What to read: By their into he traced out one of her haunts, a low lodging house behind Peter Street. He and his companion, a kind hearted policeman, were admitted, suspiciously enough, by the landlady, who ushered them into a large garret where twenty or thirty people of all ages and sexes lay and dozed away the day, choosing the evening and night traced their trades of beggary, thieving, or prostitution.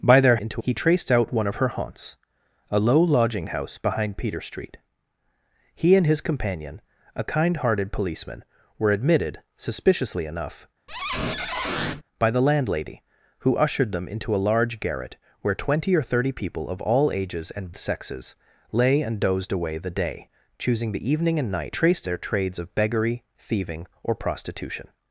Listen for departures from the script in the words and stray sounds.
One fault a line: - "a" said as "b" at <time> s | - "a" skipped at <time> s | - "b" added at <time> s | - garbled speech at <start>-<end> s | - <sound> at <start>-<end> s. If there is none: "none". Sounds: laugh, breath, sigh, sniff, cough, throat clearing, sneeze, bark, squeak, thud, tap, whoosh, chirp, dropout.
- squeak at 10.9-12.0 s